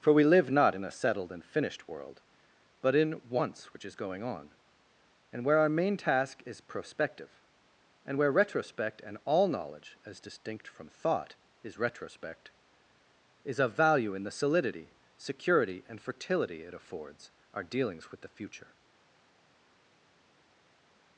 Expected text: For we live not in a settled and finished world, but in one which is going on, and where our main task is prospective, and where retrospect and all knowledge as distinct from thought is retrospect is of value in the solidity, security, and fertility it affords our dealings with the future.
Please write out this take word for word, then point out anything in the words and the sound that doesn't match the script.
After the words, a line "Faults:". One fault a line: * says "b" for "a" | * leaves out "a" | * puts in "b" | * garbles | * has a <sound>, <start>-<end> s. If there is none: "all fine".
For we live not in a settled and finished world, but in once which is going on, and where our main task is prospective, and where retrospect and all knowledge as distinct from thought is retrospect is of value in the solidity, security, and fertility it affords our dealings with the future.
Faults:
* says "once" for "one"